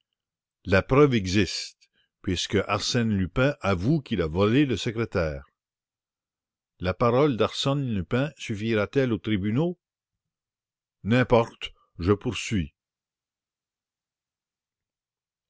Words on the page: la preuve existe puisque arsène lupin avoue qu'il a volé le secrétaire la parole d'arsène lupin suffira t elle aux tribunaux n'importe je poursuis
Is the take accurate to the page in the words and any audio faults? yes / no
yes